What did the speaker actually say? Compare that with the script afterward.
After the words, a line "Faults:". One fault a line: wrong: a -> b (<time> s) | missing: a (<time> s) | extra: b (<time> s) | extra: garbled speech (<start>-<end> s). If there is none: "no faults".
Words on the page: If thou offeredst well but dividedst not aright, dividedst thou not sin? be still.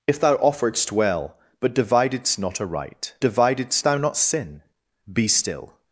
If thou offeredst well but dividedst not aright, dividedst thou not sin? be still.
Faults:
no faults